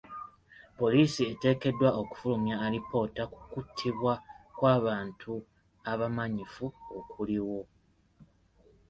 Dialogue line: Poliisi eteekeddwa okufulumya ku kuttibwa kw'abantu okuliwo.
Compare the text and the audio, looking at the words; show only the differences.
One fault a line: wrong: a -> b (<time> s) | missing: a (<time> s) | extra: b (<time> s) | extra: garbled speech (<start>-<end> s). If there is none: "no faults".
extra: alipoota (2.6 s)
extra: abamanyifu (5.9 s)